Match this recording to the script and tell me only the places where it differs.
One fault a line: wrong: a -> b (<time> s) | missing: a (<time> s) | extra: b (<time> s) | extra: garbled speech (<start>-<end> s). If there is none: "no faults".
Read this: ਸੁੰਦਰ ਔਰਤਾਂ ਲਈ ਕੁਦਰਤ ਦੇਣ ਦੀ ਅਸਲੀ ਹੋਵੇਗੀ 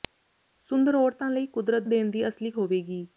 no faults